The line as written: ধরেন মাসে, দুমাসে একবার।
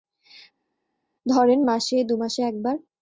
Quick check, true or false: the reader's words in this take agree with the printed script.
true